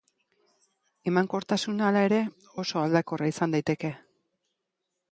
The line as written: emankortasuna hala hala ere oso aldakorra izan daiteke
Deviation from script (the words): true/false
true